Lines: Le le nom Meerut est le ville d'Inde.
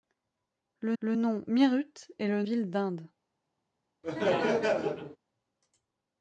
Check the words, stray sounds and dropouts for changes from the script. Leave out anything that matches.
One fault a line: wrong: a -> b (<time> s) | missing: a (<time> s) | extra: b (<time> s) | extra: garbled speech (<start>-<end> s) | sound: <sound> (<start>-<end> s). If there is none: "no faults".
sound: laugh (4.0-5.2 s)